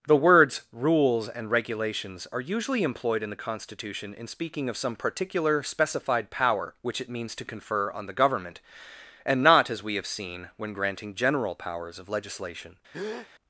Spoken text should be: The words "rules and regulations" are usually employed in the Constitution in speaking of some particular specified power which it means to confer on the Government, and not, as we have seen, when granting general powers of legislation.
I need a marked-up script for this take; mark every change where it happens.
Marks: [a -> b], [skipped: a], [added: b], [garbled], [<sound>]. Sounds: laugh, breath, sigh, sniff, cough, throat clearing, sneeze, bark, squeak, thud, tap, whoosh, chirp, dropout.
The words "rules and regulations" are usually employed in the Constitution in speaking of some particular specified power which it means to confer on the Government, and not, as we have seen, when granting general powers of legislation. [breath]